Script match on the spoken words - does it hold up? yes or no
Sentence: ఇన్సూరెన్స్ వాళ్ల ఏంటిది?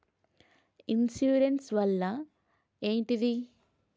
yes